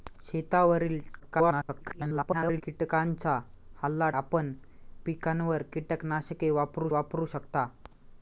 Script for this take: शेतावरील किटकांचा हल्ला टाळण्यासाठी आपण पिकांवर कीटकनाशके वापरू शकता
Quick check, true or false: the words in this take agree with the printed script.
false